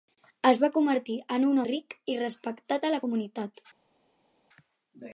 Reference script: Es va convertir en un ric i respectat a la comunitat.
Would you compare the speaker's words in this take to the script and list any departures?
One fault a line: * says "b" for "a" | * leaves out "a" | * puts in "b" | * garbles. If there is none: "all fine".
all fine